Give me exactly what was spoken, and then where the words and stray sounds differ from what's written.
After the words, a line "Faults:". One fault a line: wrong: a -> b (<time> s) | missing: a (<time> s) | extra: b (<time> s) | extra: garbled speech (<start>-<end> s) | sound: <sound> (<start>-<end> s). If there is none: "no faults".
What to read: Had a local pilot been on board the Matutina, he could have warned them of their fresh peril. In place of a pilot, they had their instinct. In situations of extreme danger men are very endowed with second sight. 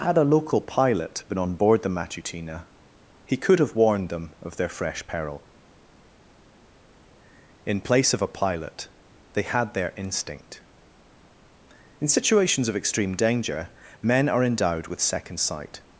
Had a local pilot been on board the Matutina, he could have warned them of their fresh peril. In place of a pilot, they had their instinct. In situations of extreme danger men are endowed with second sight.
Faults:
missing: very (14.4 s)